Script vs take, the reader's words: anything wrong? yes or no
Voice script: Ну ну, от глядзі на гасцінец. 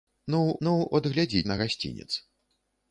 no